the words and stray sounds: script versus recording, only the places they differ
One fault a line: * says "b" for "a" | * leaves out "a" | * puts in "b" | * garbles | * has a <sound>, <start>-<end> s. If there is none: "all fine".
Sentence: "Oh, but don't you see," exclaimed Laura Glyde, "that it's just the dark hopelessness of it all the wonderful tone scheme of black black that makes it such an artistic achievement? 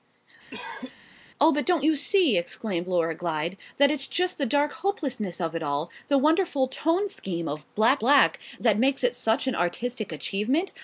* has a cough, 0.5-1.0 s